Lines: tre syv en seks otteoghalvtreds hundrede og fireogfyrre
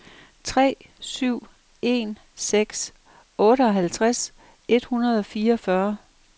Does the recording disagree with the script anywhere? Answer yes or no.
yes